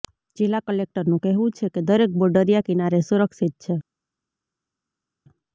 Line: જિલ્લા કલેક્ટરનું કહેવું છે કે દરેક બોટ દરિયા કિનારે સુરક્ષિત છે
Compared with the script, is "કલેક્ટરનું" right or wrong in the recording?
right